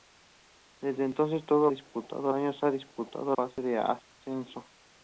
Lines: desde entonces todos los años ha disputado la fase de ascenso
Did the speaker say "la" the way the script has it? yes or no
no